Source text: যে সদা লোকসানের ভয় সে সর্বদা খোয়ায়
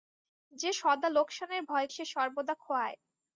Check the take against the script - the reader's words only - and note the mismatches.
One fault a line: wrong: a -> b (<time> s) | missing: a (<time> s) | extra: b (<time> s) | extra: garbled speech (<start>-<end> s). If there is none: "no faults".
no faults